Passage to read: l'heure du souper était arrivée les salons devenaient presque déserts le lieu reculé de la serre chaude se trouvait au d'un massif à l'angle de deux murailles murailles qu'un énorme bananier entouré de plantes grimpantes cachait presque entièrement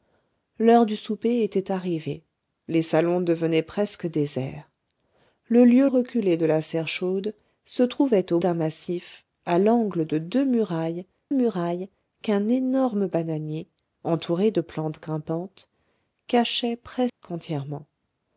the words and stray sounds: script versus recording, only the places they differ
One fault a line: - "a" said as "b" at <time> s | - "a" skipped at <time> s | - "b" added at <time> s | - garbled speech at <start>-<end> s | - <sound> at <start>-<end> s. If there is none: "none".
- dropout at 17.1-17.2 s